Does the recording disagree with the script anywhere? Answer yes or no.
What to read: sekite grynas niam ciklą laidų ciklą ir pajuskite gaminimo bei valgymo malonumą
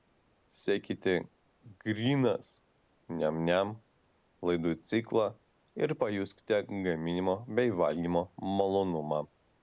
yes